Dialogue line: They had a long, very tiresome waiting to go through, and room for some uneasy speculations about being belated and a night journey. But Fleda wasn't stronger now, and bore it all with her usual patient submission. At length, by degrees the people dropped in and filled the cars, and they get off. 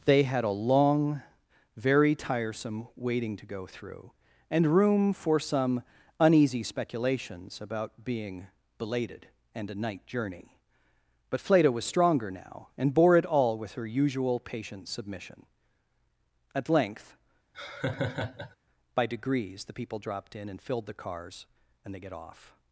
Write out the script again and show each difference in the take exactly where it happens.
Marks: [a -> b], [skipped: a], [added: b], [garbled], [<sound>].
They had a long, very tiresome waiting to go through, and room for some uneasy speculations about being belated and a night journey. But Fleda [wasn't -> was] stronger now, and bore it all with her usual patient submission. At length, [laugh] by degrees the people dropped in and filled the cars, and they get off.